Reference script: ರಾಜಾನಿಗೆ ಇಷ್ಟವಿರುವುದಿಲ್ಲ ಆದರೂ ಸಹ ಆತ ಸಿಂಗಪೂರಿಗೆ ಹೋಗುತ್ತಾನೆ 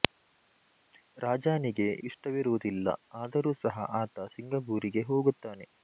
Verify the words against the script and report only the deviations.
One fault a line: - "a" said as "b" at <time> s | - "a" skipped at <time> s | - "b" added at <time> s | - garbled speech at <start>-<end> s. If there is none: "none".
none